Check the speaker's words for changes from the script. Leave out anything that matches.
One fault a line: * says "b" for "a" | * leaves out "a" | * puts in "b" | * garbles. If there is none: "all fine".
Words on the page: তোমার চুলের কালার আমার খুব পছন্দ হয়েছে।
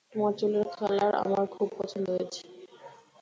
all fine